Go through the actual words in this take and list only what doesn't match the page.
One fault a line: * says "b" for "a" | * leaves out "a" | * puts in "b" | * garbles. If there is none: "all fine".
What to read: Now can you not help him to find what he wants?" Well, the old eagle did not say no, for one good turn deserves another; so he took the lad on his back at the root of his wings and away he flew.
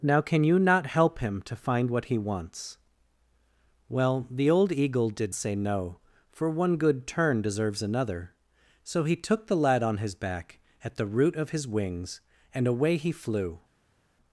* leaves out "not"